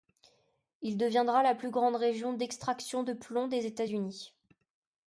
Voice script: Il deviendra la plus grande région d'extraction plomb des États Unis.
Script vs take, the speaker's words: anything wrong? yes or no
yes